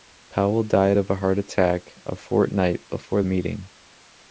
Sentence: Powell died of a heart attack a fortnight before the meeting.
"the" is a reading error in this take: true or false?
true